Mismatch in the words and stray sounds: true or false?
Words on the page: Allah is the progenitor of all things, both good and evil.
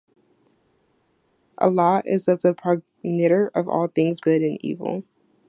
true